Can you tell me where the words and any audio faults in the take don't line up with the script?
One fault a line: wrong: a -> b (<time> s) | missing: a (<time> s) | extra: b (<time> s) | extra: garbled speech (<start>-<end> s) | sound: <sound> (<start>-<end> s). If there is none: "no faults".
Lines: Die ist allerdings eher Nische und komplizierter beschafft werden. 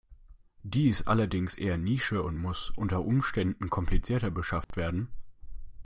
extra: muss unter Umständen (2.4 s)
sound: dropout (4.6-4.7 s)